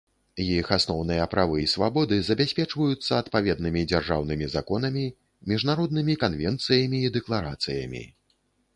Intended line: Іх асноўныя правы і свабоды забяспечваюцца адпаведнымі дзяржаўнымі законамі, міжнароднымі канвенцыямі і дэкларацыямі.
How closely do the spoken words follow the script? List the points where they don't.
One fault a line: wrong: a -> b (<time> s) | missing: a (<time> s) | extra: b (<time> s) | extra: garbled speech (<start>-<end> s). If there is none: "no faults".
no faults